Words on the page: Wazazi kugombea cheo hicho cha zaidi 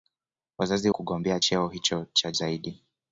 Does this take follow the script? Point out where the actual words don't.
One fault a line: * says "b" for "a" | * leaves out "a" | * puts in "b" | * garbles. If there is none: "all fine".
all fine